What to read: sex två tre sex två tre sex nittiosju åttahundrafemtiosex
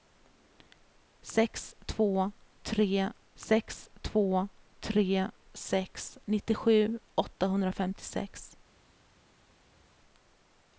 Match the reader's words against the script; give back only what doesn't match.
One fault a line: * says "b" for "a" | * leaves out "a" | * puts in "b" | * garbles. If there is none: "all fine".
all fine